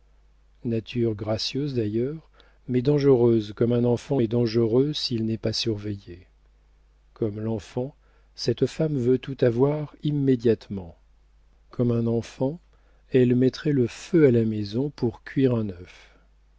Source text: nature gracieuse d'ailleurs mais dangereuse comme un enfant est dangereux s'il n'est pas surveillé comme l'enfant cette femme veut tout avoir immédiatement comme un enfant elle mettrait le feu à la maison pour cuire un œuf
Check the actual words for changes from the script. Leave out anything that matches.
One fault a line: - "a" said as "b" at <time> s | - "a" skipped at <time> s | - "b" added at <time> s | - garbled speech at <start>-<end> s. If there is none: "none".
none